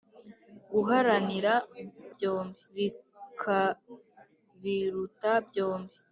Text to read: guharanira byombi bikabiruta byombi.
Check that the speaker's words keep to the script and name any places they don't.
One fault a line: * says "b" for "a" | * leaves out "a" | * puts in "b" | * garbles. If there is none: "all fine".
all fine